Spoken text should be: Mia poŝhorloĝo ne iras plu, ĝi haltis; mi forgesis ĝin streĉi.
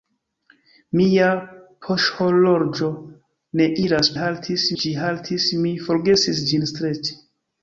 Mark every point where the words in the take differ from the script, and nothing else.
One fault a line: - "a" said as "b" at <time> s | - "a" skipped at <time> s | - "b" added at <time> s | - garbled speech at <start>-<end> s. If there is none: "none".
- "plu" said as "haltis" at 4.2 s